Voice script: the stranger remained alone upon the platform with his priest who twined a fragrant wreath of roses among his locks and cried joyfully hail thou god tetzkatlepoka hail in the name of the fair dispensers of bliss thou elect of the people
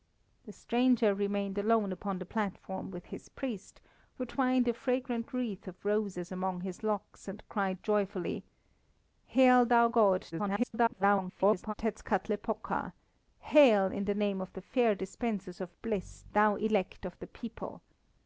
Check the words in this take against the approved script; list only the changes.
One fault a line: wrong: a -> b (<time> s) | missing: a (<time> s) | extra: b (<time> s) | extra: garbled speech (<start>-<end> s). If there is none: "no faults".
extra: garbled speech (10.3-11.7 s)